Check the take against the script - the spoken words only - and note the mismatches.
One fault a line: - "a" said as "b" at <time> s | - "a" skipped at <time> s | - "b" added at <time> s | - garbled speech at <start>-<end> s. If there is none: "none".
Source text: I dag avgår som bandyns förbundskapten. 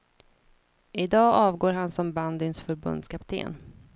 - "han" added at 1.7 s